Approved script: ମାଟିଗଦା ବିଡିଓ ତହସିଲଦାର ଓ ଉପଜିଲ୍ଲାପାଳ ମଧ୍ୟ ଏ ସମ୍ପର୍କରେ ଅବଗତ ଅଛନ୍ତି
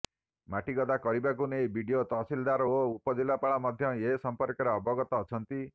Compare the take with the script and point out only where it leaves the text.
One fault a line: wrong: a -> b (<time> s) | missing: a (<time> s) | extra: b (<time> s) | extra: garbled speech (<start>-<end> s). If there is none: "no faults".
extra: କରିବାକୁ ନେଇ (1.0 s)